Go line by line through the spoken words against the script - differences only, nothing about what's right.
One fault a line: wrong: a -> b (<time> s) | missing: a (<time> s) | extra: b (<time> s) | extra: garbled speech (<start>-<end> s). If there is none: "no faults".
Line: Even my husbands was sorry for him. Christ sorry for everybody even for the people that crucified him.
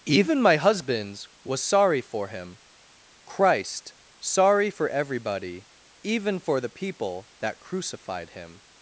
no faults